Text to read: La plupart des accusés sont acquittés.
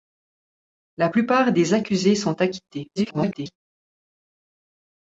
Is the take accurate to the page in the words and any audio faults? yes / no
no